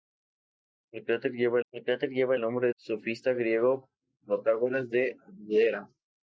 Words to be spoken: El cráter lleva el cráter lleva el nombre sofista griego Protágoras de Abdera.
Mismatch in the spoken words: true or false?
false